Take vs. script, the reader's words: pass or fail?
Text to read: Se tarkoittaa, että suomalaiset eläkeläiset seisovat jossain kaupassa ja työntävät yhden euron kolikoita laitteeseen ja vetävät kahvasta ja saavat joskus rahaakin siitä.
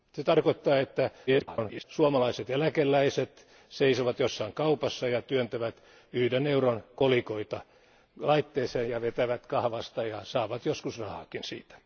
fail